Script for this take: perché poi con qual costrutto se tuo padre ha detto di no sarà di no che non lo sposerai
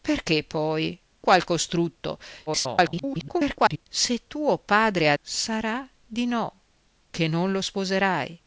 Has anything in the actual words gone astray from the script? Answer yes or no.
yes